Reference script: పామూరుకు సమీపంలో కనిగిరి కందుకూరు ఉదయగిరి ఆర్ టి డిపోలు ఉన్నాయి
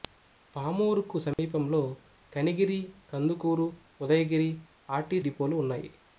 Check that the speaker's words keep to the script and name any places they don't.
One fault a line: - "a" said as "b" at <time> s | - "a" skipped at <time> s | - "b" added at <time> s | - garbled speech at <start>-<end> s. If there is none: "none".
none